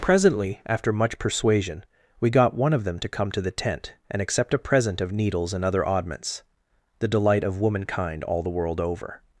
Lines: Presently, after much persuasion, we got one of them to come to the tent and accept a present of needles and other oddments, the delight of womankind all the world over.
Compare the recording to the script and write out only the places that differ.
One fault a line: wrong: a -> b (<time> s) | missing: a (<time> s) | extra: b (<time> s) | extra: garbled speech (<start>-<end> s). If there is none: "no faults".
no faults